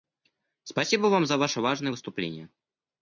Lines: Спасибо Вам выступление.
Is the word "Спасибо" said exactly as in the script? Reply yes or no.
yes